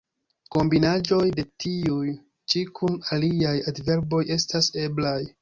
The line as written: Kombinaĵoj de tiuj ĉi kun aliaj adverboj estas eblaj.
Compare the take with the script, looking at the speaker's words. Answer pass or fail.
pass